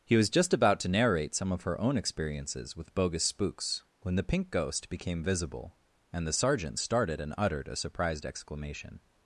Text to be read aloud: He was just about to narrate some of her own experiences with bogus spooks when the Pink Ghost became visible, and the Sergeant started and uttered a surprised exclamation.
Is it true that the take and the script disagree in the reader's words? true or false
false